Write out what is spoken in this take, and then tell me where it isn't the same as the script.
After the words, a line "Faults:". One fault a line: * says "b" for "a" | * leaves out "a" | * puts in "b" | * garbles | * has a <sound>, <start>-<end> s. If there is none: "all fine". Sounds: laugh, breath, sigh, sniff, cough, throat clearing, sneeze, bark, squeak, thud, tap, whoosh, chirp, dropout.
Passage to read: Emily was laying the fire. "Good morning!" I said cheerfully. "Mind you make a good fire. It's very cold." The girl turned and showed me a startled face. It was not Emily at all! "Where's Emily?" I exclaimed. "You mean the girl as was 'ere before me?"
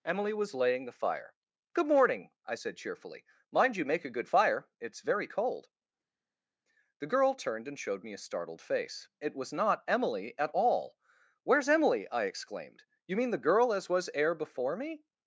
Emily was laying the fire. "Good morning!" I said cheerfully. "Mind you make a good fire. It's very cold." The girl turned and showed me a startled face. It was not Emily at all! "Where's Emily?" I exclaimed. "You mean the girl as was 'ere before me?"
Faults:
all fine